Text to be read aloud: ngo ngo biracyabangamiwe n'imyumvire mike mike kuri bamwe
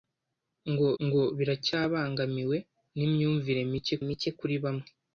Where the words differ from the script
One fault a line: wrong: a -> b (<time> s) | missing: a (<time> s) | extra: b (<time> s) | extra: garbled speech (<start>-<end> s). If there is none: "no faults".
no faults